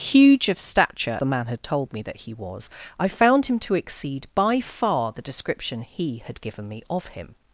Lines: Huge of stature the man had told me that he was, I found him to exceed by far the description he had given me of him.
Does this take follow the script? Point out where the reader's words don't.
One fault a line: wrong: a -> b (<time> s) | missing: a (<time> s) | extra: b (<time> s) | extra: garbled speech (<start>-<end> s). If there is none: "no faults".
no faults